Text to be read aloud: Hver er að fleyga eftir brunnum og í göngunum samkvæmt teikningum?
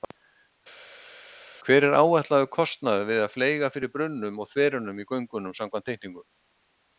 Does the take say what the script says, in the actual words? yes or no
no